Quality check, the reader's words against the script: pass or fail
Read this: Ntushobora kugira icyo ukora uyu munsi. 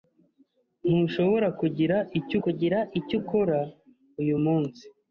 fail